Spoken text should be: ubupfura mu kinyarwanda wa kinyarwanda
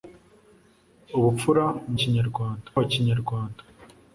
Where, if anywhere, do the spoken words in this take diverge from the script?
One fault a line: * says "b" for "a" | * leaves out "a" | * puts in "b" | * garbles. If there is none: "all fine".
all fine